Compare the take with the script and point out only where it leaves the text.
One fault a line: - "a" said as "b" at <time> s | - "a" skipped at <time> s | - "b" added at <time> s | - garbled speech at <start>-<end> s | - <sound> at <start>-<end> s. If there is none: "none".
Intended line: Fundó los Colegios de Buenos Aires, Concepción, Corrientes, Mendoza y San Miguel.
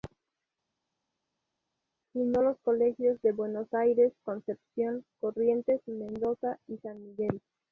none